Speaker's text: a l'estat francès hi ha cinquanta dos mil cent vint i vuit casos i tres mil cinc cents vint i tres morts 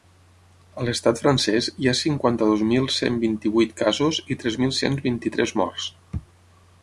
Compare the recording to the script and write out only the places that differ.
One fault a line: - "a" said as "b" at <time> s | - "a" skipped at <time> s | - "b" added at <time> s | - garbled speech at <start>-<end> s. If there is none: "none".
- "cinc" skipped at 4.8 s